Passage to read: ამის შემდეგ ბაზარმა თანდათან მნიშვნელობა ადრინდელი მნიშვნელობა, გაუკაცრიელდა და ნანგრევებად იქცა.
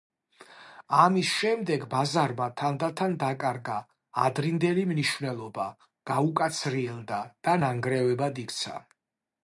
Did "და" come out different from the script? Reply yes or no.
no